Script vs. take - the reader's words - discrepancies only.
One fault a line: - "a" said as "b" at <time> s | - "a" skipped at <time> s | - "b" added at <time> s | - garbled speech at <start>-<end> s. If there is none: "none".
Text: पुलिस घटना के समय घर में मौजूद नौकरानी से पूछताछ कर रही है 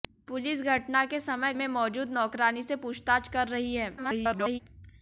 - "घर" skipped at 1.5 s
- garbled speech at 4.0-4.6 s